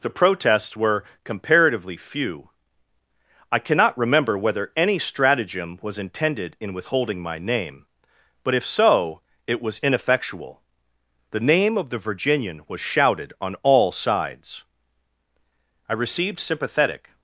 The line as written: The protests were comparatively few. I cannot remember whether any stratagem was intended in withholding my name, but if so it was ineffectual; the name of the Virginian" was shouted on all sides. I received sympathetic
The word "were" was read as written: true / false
true